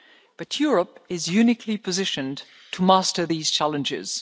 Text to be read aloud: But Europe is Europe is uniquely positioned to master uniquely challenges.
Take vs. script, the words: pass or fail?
fail